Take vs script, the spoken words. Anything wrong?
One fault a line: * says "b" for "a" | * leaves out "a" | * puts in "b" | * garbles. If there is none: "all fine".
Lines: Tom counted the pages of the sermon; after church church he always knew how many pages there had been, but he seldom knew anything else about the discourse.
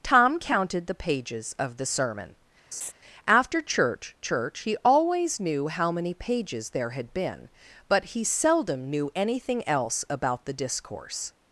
all fine